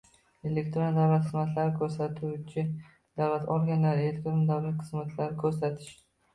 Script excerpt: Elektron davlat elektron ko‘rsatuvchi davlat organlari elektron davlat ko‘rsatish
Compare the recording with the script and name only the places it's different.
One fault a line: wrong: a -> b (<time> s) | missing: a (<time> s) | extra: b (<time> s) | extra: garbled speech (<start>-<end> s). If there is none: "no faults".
wrong: elektron -> xizmatlari (1.2 s)
extra: xizmatlari (4.9 s)